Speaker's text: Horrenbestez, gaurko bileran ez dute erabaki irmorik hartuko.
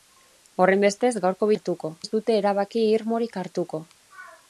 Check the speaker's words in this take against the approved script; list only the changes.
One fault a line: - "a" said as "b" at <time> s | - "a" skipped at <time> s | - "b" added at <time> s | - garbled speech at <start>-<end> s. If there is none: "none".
- "bileran" said as "hartuko" at 1.5 s